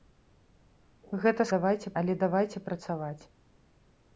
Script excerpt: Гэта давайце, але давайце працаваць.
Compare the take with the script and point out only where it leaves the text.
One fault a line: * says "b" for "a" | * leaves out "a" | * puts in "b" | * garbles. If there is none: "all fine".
all fine